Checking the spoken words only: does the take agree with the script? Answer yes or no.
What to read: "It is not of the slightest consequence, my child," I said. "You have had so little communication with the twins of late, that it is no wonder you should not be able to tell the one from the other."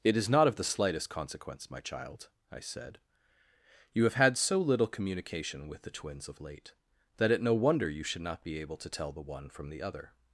no